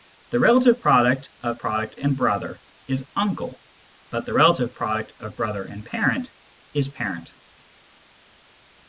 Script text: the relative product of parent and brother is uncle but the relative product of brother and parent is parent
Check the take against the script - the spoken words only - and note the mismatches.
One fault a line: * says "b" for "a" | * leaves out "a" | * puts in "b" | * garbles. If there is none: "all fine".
* says "product" for "parent"